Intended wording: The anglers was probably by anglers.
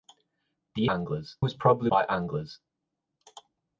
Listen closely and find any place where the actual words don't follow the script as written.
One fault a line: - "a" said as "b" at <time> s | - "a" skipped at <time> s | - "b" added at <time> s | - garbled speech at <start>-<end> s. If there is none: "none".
none